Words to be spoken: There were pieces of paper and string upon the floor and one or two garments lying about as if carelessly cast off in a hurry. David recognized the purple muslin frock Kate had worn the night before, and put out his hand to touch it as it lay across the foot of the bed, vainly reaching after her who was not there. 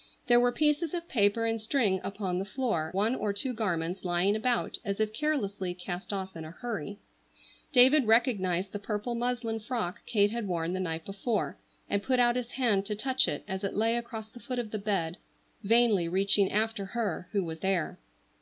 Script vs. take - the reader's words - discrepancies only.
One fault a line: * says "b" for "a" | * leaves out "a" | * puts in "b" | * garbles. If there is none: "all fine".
* leaves out "and"
* leaves out "not"